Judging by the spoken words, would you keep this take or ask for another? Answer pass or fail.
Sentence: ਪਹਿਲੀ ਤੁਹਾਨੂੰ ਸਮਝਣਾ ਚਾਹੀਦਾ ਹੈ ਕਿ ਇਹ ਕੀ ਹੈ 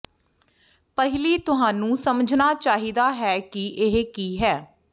pass